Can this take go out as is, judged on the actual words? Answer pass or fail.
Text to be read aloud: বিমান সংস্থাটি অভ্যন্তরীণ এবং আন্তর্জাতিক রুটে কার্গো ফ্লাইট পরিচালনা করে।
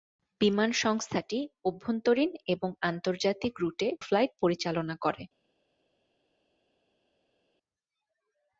fail